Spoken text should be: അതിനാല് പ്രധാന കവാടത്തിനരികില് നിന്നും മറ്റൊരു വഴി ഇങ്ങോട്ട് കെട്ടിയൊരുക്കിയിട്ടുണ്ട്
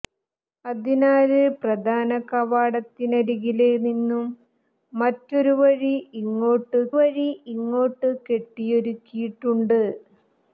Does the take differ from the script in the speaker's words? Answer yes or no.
yes